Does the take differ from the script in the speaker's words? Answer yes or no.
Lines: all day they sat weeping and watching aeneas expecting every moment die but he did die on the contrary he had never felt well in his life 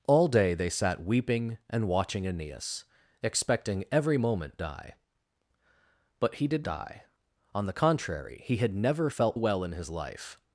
no